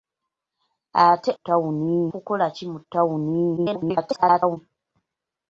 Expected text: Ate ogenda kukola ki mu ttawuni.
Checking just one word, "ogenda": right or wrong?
wrong